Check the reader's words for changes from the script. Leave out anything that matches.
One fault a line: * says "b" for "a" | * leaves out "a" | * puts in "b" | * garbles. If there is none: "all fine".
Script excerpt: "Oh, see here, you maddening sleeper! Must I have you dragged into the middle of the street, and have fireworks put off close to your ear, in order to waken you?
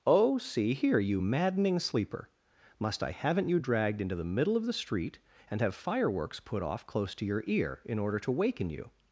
* says "haven't" for "have"